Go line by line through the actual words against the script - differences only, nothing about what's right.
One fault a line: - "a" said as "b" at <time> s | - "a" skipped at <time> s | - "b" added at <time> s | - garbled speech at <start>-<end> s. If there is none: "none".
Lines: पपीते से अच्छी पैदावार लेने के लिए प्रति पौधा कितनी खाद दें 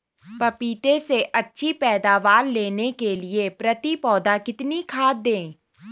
none